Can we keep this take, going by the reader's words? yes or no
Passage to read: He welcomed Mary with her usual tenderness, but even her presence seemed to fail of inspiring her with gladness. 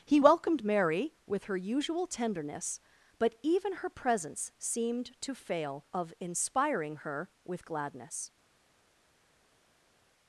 yes